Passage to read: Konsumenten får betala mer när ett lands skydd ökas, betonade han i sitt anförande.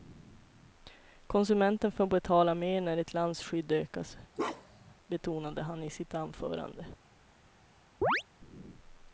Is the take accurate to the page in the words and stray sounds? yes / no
no